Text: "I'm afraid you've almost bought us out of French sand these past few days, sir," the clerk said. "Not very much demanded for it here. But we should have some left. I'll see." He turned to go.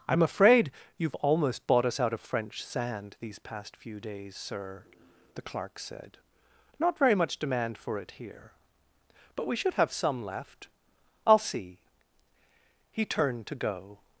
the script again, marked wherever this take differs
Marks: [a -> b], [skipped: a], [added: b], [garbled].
"I'm afraid you've almost bought us out of French sand these past few days, sir," the clerk said. "Not very much [demanded -> demand] for it here. But we should have some left. I'll see." He turned to go.